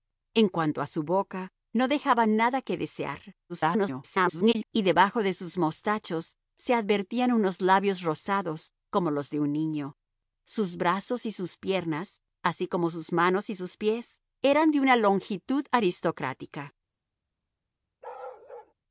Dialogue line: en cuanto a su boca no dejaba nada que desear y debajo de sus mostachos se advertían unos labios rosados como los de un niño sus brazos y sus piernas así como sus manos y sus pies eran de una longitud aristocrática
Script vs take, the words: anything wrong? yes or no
yes